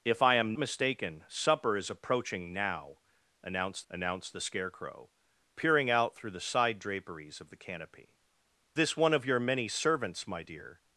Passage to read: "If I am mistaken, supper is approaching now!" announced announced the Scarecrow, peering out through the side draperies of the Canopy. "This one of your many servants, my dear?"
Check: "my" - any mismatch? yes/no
no